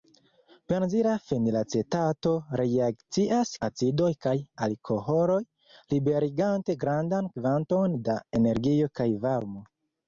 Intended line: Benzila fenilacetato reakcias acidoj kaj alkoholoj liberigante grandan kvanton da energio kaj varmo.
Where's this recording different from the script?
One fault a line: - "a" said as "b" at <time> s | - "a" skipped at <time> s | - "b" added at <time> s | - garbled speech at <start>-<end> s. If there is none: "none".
none